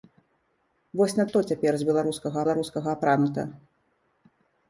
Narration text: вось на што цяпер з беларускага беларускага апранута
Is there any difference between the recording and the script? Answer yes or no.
no